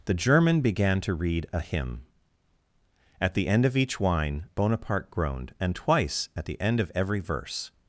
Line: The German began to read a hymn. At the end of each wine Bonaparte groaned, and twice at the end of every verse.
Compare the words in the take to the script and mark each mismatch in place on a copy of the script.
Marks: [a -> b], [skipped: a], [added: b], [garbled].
The German began to read a hymn. At the end of each wine Bonaparte groaned, and twice at the end of every verse.